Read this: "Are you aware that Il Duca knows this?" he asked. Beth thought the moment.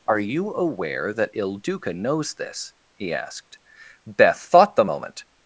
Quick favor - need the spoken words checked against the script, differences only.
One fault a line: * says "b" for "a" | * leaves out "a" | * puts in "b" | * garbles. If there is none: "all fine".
all fine